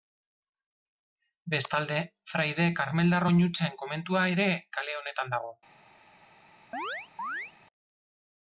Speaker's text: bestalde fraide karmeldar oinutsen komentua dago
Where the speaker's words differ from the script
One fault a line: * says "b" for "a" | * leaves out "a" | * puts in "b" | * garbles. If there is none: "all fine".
* puts in "ere kale honetan"